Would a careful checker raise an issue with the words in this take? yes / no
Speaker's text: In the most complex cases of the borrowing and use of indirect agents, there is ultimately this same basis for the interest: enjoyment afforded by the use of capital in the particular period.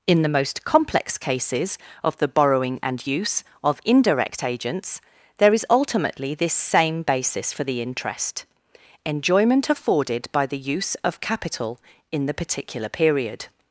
no